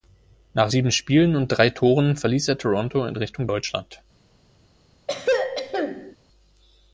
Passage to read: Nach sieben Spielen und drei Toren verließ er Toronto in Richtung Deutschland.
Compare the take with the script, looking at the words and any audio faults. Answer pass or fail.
fail